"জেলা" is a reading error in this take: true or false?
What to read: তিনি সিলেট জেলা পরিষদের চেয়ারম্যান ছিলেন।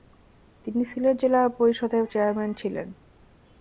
false